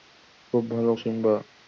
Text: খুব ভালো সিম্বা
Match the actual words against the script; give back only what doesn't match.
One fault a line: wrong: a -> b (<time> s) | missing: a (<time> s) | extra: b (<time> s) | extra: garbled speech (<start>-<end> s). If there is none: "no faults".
no faults